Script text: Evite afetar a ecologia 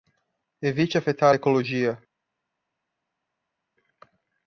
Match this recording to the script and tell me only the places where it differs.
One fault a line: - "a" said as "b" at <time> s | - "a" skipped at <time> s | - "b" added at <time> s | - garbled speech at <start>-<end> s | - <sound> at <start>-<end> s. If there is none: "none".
none